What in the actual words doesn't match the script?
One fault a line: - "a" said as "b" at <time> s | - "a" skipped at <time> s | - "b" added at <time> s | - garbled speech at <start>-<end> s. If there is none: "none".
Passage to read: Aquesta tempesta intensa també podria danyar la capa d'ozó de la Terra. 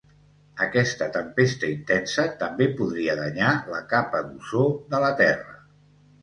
none